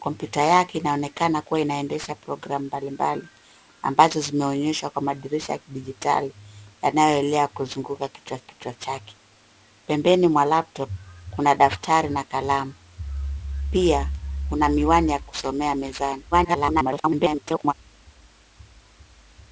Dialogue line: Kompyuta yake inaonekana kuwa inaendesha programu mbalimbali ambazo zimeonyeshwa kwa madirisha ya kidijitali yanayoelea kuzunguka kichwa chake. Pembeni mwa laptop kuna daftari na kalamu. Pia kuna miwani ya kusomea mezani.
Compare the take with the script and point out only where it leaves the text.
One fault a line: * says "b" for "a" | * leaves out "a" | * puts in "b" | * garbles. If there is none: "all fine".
* puts in "kichwa"
* garbles